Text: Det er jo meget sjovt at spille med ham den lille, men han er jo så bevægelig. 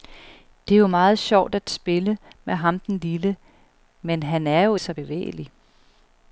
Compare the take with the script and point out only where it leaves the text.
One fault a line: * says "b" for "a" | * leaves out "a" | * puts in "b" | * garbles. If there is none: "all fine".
all fine